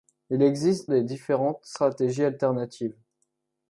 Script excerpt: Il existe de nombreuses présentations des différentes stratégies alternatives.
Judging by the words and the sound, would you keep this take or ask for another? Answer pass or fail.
fail